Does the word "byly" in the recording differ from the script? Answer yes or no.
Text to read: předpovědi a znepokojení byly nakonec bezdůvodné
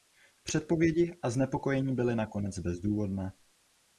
no